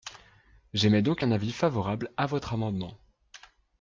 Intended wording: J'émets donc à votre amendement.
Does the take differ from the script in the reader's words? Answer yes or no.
yes